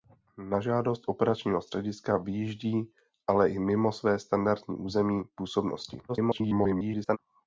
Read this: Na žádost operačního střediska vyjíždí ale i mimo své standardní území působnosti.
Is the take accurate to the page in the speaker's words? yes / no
no